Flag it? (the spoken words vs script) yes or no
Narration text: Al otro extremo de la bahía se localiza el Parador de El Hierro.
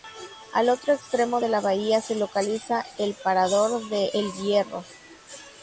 no